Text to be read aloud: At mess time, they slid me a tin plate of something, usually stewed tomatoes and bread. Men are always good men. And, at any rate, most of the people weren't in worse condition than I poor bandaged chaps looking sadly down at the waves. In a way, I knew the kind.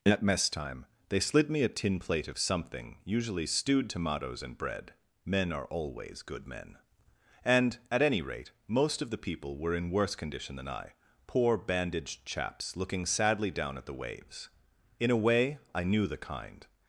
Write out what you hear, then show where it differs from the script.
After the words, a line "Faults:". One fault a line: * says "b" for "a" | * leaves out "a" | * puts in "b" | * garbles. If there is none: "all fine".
At mess time, they slid me a tin plate of something, usually stewed tomatoes and bread. Men are always good men. And, at any rate, most of the people were in worse condition than I poor bandaged chaps looking sadly down at the waves. In a way, I knew the kind.
Faults:
* says "were" for "weren't"